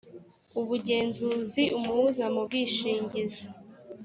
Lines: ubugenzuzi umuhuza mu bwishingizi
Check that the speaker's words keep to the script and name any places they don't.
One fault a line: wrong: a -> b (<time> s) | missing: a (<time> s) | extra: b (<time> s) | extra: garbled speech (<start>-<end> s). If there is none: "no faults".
no faults